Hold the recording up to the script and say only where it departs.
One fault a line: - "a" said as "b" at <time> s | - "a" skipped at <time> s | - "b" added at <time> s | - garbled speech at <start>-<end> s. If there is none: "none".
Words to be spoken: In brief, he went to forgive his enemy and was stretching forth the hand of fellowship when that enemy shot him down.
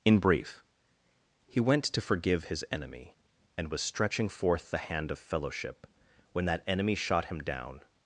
none